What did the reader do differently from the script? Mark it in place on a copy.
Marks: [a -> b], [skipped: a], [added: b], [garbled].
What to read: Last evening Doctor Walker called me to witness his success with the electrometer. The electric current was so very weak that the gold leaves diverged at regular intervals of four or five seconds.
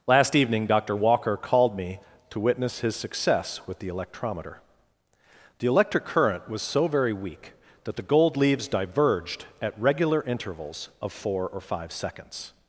Last evening Doctor Walker called me to witness his success with the electrometer. The electric current was so very weak that the gold leaves diverged at regular intervals of four or five seconds.